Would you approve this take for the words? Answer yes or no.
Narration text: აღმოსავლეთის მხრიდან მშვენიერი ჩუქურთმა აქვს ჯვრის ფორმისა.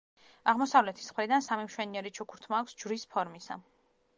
no